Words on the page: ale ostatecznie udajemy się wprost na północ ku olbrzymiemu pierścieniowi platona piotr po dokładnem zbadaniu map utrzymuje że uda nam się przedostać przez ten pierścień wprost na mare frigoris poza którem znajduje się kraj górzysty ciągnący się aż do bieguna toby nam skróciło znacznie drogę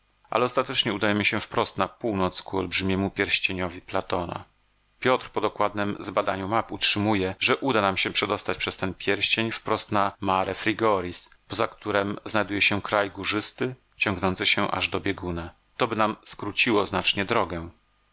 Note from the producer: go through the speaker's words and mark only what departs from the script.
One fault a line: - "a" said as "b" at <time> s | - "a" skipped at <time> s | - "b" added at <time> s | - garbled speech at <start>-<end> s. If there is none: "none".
none